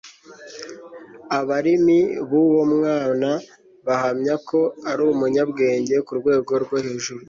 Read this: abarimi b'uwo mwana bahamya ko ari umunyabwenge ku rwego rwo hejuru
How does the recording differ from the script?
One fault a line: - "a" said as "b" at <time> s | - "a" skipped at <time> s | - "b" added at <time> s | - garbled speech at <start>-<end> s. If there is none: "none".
none